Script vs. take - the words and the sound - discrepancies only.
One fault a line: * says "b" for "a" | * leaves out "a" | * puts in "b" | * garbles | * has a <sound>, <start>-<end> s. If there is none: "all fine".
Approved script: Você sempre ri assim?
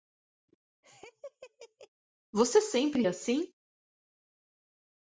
* has a laugh, 0.8-1.9 s
* leaves out "ri"